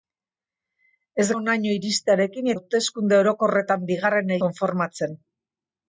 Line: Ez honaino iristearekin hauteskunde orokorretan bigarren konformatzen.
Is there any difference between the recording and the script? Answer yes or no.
no